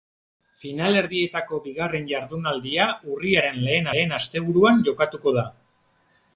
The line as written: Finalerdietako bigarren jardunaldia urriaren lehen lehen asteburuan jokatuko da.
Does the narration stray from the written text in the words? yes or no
no